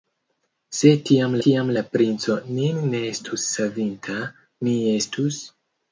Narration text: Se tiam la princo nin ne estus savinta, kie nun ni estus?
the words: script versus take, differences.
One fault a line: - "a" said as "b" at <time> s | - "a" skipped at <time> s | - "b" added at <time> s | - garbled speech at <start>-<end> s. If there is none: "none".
- "tiam" added at 1.4 s
- "kie nun" skipped at 4.2 s